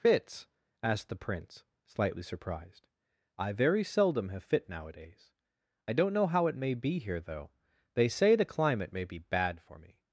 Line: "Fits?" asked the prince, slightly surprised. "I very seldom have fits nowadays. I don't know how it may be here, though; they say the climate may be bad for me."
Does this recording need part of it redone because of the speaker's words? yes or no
yes